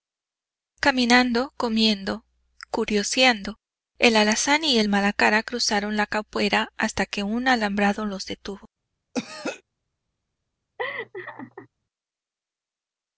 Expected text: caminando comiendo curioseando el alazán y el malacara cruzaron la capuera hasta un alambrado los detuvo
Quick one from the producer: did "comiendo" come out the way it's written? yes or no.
yes